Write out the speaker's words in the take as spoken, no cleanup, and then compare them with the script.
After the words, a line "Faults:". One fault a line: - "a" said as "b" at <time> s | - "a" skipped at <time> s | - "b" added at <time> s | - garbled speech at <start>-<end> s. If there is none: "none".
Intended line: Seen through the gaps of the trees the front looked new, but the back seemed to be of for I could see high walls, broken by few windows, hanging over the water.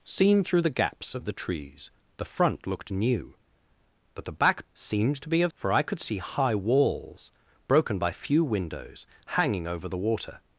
Seen through the gaps of the trees the front looked new, but the back seemed to be of for I could see high walls, broken by few windows, hanging over the water.
Faults:
none